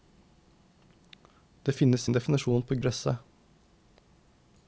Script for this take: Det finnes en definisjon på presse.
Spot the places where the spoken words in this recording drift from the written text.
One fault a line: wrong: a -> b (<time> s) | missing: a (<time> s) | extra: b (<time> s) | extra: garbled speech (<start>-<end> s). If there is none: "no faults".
no faults